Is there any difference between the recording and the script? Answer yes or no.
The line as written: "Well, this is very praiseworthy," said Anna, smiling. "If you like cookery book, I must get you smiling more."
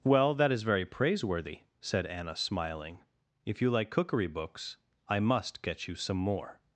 yes